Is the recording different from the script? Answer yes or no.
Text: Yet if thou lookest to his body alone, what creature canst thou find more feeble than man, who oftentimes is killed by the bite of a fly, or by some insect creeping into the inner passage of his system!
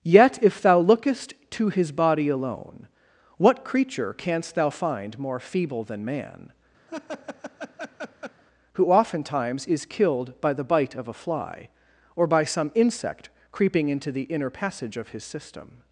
no